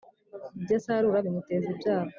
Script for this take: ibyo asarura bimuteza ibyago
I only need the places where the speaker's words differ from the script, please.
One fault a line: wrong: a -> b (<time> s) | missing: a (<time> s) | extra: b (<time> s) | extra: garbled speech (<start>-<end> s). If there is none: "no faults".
no faults